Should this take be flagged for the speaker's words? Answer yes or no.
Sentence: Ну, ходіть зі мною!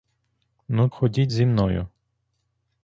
no